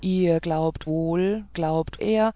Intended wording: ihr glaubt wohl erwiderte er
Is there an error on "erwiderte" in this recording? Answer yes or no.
yes